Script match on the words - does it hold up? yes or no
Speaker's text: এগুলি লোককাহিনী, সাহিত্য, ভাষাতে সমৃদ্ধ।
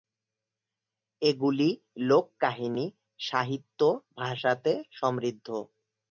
yes